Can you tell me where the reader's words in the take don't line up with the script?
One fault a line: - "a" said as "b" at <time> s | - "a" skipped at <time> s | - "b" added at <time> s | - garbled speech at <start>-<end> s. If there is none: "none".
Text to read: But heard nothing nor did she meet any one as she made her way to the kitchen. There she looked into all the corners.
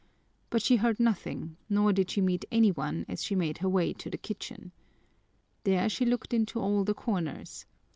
- "she" added at 0.6 s